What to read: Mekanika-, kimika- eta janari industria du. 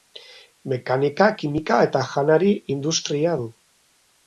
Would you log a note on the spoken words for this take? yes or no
no